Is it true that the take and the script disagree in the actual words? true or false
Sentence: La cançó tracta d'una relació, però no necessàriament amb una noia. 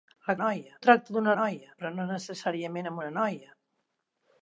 true